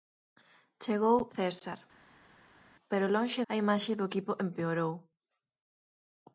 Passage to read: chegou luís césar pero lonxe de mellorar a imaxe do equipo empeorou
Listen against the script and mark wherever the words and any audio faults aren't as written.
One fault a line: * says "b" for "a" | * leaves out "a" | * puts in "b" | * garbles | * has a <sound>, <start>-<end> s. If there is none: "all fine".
* leaves out "luís"
* leaves out "de mellorar"